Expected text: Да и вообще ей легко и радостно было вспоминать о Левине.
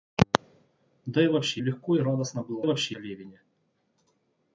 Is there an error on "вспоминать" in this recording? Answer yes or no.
yes